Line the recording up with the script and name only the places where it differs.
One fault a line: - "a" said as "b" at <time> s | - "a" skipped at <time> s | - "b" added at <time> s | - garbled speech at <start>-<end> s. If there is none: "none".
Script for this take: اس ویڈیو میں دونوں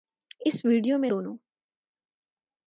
none